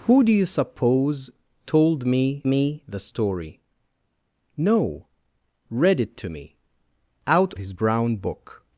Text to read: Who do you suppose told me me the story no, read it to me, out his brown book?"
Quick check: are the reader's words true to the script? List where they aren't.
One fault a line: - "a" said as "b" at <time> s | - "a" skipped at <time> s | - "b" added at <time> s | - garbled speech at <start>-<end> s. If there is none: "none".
none